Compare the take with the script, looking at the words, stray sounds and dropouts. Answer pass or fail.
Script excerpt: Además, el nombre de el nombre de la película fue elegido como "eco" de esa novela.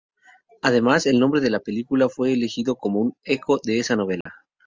fail